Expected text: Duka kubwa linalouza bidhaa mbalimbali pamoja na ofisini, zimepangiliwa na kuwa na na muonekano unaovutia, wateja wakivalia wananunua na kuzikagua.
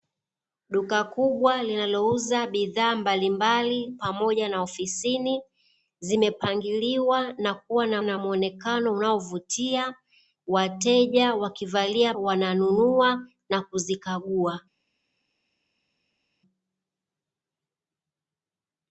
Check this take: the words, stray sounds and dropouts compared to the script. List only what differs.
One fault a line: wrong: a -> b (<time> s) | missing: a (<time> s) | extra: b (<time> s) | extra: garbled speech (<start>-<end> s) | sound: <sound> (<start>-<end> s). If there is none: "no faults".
no faults